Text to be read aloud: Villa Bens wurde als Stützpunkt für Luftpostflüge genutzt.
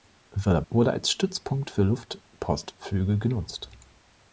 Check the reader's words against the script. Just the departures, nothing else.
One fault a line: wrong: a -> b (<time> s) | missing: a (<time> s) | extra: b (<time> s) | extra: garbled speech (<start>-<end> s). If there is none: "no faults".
missing: Bens (0.6 s)